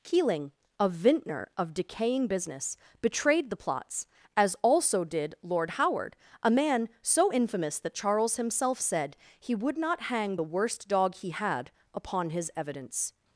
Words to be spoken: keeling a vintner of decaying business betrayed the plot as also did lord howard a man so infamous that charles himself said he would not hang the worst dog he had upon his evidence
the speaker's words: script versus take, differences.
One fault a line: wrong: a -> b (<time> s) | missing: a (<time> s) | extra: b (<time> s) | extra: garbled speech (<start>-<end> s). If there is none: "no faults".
wrong: plot -> plots (3.5 s)